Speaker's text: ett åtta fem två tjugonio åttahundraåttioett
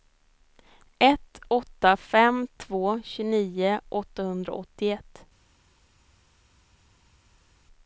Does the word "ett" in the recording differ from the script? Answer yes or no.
no